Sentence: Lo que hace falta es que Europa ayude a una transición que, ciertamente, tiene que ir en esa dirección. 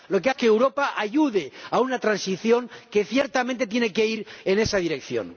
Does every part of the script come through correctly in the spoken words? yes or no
no